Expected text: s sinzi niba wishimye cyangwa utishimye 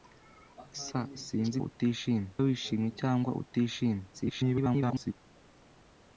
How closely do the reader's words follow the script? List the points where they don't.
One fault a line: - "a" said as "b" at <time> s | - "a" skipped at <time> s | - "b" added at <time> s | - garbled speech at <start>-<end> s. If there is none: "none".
- "niba" said as "utishimye" at 1.7 s
- garbled speech at 4.1-5.1 s